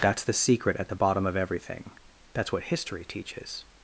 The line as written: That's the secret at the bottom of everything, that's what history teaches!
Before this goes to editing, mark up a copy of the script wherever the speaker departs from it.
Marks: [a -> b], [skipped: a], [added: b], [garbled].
That's the secret at the bottom of everything, that's what history teaches!